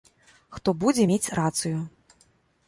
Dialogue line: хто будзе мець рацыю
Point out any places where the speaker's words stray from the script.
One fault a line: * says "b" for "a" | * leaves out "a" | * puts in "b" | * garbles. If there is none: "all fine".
all fine